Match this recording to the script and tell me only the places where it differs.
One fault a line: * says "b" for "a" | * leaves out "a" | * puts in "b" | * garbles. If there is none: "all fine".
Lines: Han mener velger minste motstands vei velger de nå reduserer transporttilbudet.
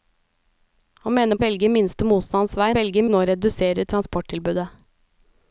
all fine